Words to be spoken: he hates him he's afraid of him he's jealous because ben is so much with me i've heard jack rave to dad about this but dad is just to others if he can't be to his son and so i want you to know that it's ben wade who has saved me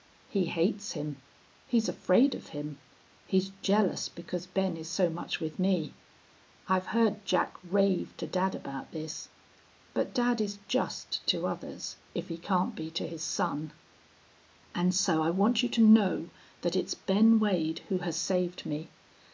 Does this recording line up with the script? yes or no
yes